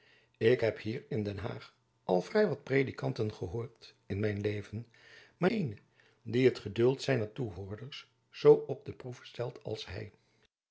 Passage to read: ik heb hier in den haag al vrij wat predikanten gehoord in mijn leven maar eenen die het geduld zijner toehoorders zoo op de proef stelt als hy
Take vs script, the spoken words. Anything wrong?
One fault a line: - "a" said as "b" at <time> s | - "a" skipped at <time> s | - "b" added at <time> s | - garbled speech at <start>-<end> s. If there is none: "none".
none